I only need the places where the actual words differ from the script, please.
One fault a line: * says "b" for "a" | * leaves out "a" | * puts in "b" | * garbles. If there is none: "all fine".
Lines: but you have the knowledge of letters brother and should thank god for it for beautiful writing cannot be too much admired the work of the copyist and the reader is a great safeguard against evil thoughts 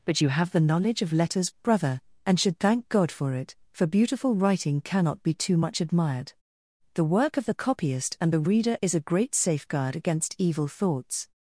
all fine